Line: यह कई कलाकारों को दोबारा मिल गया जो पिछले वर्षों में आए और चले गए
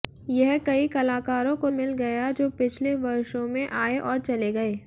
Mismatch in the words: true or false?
true